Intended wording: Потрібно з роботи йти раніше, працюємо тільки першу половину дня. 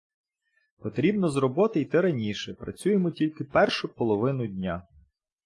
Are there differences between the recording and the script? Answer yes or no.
no